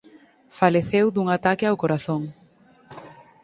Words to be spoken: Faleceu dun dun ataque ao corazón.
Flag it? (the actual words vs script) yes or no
yes